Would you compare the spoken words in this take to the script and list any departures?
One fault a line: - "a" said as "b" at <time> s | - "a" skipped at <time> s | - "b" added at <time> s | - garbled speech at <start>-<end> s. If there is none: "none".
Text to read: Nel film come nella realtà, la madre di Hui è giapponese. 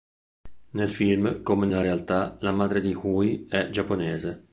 none